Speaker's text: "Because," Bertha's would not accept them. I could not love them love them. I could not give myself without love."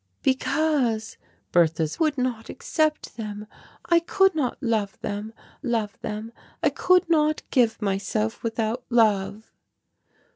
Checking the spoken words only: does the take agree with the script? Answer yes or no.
yes